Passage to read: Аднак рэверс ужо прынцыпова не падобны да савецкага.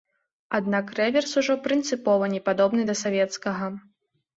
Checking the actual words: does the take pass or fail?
pass